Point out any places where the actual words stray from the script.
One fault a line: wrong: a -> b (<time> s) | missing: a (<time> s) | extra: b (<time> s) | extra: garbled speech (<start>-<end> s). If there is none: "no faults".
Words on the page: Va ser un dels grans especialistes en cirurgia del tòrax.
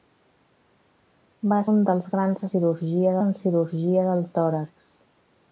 missing: ser (1.6 s)
wrong: especialistes -> cirurgia (2.5 s)